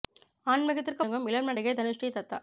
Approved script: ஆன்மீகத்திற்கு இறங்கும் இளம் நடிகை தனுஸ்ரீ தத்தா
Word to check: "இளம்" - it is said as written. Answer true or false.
true